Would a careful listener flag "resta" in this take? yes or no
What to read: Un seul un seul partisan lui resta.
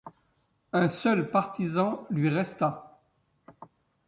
no